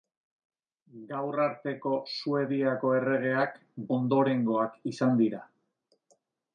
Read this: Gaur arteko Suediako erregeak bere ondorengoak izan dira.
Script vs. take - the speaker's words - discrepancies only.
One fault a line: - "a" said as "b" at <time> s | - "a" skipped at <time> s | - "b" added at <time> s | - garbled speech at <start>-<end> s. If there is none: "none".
- "bere" skipped at 3.6 s